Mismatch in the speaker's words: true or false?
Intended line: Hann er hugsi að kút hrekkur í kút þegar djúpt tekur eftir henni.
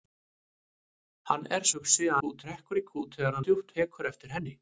false